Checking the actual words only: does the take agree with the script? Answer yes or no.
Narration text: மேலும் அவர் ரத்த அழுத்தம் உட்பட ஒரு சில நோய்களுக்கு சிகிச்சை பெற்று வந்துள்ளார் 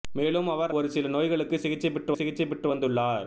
no